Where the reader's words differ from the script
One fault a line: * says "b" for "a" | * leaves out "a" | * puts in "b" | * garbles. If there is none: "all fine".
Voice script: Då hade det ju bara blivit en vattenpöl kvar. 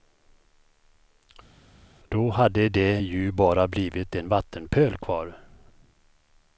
all fine